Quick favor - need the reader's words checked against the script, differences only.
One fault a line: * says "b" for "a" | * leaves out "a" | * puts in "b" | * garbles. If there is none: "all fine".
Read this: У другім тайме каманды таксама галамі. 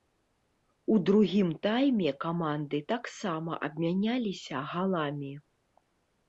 * puts in "абмяняліся"